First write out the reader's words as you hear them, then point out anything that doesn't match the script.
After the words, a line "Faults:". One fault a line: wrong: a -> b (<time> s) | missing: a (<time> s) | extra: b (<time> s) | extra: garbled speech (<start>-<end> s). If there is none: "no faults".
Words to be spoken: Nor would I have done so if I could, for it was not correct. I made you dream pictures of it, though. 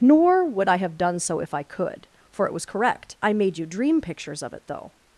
Nor would I have done so if I could, for it was correct. I made you dream pictures of it, though.
Faults:
missing: not (2.6 s)